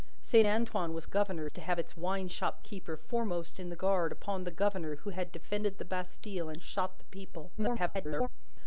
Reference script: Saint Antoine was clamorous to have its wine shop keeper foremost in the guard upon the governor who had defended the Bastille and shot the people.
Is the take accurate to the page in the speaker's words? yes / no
no